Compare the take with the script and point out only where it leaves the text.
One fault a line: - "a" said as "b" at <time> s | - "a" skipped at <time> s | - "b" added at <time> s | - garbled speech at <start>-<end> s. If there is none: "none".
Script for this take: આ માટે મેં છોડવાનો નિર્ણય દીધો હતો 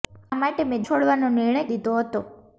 none